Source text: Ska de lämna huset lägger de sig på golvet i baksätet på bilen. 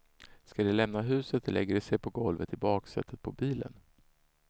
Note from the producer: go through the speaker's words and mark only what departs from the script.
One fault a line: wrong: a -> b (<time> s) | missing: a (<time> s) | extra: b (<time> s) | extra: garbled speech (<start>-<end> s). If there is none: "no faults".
no faults